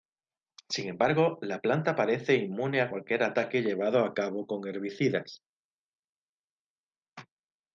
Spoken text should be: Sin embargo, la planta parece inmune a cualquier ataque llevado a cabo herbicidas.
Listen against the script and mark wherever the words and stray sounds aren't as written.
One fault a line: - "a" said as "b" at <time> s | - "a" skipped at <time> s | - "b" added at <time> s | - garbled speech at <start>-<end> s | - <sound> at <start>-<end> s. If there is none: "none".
- "con" added at 4.5 s